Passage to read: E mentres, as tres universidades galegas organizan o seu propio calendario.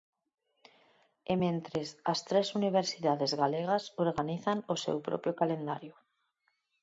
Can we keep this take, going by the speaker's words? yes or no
yes